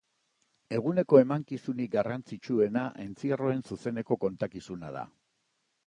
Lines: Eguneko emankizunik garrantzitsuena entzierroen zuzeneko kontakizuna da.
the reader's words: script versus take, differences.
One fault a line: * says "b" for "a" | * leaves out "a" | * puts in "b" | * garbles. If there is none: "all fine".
all fine